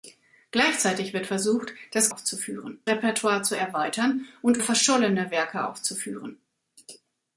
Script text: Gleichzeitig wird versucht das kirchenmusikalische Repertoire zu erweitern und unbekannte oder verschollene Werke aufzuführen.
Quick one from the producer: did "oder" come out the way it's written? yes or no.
no